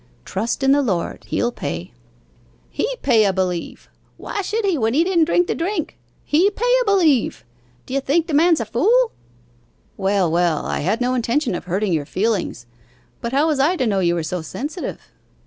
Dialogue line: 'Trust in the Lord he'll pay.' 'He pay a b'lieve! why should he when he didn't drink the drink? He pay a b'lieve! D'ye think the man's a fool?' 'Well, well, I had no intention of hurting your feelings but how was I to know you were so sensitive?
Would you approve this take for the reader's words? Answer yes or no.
yes